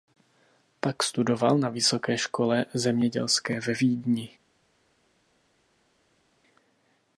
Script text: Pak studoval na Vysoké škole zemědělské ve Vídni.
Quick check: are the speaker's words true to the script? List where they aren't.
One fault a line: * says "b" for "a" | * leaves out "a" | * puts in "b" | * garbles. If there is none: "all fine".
all fine